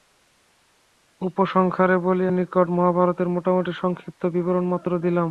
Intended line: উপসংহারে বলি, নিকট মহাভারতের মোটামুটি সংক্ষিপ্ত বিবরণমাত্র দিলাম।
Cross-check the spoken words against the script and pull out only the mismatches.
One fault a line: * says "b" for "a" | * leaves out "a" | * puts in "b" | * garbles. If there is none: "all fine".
all fine